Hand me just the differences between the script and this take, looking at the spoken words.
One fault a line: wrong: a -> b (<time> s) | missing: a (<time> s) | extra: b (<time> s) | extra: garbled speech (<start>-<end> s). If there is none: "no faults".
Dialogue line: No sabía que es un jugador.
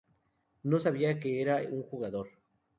wrong: es -> era (1.4 s)